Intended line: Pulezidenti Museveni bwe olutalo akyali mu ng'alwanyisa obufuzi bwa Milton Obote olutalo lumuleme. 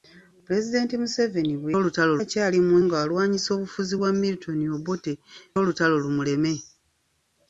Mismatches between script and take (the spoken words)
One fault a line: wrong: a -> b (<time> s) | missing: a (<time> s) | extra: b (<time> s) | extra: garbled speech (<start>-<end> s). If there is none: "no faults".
no faults